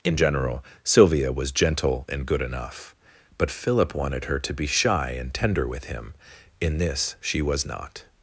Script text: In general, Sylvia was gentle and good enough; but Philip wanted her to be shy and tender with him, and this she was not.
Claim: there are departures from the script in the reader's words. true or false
true